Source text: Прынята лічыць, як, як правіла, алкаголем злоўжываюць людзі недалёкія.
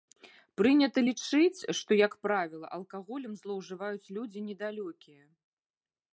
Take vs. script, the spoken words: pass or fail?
fail